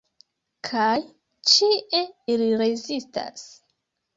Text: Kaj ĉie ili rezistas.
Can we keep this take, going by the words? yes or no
yes